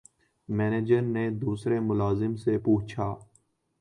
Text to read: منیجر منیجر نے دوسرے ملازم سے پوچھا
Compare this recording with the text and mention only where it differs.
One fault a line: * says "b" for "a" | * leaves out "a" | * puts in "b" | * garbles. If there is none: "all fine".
* leaves out "منیجر"